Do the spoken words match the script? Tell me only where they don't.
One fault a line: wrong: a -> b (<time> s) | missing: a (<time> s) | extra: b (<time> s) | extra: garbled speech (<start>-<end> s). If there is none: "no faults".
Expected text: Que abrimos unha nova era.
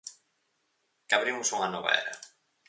no faults